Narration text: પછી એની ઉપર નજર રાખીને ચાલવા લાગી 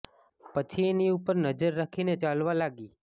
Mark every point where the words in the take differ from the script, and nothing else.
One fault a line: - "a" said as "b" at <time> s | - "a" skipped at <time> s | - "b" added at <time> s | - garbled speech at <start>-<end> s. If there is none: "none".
none